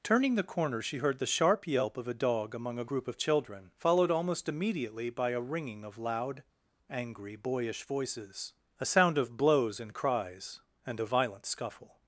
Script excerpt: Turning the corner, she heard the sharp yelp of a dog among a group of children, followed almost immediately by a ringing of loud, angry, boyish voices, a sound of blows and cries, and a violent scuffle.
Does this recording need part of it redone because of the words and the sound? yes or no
no